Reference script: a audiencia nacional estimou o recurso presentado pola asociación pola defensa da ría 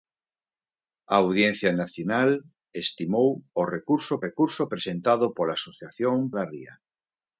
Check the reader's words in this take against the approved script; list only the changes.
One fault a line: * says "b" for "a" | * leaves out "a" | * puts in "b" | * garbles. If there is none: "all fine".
* puts in "recurso"
* leaves out "pola defensa"